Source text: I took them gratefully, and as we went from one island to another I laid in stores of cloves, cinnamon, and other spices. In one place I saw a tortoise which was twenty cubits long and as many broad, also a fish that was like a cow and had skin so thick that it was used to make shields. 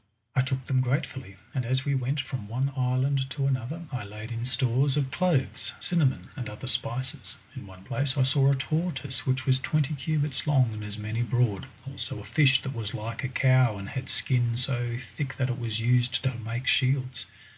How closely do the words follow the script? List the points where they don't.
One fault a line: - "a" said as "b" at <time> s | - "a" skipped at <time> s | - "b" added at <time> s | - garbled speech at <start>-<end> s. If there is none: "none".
none